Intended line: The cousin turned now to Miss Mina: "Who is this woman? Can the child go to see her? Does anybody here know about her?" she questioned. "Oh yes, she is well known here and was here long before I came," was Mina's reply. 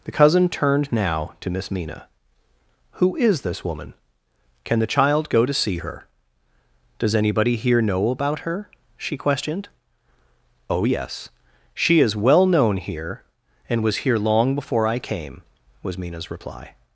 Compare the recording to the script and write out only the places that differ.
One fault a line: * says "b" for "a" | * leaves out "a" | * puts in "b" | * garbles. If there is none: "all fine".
all fine